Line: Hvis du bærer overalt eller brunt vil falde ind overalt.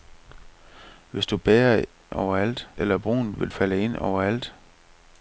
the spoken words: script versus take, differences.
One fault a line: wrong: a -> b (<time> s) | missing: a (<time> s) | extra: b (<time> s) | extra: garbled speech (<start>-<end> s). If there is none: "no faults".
no faults